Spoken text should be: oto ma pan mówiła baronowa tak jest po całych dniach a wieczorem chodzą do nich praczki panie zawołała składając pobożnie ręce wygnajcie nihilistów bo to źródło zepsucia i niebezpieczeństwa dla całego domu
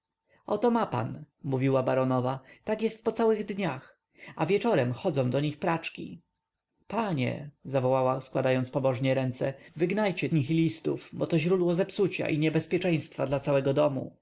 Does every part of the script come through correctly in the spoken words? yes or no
yes